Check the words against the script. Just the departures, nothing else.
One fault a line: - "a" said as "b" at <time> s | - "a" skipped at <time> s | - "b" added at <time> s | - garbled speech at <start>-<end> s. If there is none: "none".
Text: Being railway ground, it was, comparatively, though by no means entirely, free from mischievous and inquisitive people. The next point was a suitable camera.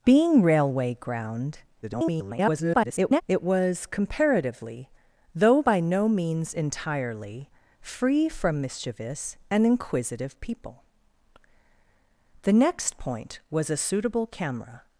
- garbled speech at 1.8-3.2 s